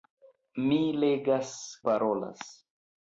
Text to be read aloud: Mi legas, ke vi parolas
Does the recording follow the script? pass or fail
fail